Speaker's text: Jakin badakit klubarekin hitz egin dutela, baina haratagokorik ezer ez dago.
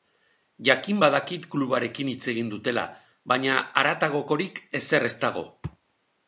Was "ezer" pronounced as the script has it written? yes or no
yes